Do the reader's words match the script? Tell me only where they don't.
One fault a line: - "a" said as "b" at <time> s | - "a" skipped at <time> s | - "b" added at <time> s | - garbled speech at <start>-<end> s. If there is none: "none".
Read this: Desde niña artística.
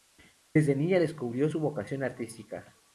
- "descubrió su vocación" added at 1.0 s